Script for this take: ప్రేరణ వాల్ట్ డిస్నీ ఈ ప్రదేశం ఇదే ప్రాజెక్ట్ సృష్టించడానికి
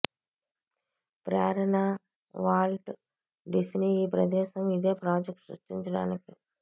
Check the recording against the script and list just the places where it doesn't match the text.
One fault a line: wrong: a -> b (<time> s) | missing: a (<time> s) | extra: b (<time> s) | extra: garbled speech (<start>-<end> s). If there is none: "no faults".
no faults